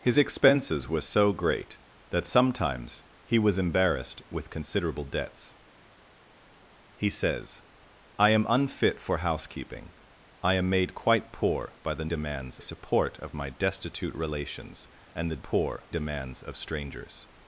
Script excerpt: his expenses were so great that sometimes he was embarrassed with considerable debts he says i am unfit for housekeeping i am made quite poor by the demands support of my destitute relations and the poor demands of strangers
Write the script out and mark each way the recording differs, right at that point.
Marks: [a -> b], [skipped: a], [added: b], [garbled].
his expenses were so great that sometimes he was embarrassed with considerable debts he says i am unfit for housekeeping i am made quite poor by the demands support of my destitute relations and the poor demands of strangers